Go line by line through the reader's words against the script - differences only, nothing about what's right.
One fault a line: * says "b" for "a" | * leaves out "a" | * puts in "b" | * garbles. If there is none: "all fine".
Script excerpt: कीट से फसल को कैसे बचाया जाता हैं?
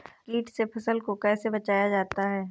all fine